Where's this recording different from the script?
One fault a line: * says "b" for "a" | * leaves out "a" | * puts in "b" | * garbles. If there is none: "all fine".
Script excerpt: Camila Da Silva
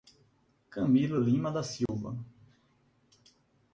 * puts in "Lima"